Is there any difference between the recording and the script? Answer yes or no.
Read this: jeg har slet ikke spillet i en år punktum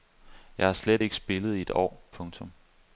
yes